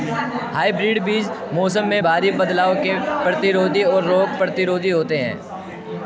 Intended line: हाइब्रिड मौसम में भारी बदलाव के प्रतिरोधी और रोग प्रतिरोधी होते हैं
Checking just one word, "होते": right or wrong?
right